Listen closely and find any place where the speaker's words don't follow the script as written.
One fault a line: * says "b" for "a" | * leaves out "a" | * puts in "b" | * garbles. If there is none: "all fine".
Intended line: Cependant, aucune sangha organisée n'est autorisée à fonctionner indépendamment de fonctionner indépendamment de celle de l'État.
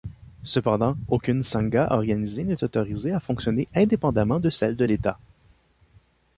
* leaves out "fonctionner indépendamment de"